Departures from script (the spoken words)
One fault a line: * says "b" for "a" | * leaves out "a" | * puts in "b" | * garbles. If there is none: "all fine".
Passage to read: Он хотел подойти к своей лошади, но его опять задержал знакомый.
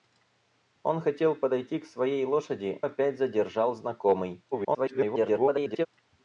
* leaves out "но его"
* garbles